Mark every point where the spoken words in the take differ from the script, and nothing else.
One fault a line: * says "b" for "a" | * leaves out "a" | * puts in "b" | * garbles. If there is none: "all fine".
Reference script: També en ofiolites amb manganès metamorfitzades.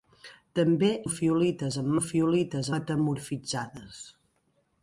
* leaves out "en"
* says "ofiolites" for "manganès"